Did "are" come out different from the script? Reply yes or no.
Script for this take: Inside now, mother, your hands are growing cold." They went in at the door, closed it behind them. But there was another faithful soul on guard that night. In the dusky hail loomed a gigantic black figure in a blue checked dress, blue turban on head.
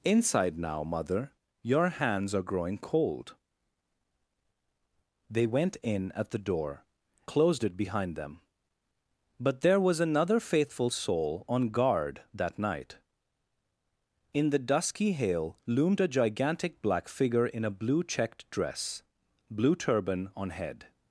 no